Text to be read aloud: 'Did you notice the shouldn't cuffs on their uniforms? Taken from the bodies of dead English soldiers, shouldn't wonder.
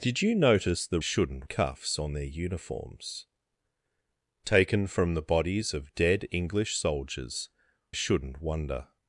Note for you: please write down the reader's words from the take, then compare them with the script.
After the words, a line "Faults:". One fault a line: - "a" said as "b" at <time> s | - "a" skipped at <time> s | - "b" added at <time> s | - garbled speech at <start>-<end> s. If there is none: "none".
'Did you notice the shouldn't cuffs on their uniforms? Taken from the bodies of dead English soldiers, shouldn't wonder.
Faults:
none